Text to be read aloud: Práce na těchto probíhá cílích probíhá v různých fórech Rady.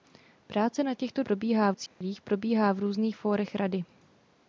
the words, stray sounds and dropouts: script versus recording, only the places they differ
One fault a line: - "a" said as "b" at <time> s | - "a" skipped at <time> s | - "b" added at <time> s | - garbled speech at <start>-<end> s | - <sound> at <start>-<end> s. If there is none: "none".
- dropout at 1.9-2.0 s